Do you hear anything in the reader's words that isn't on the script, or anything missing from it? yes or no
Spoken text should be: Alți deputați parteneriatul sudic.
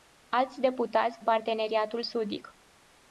no